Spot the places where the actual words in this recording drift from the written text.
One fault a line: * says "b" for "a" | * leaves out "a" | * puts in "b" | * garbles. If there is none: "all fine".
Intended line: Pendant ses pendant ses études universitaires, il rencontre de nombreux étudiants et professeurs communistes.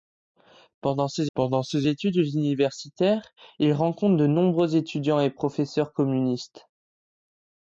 all fine